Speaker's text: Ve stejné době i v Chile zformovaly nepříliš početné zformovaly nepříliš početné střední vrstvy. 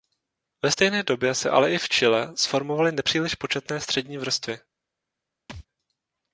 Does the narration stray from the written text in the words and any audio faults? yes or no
yes